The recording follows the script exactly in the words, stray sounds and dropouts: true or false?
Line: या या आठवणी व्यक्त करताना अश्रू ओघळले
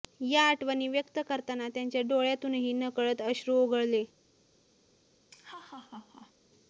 false